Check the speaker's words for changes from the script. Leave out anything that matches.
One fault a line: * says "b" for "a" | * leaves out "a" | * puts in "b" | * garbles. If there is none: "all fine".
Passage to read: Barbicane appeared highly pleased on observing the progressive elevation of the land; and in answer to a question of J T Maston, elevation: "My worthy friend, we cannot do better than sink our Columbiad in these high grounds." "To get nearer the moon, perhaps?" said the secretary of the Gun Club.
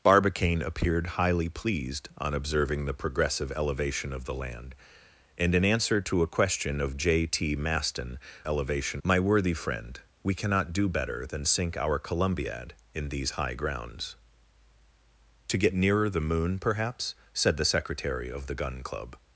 all fine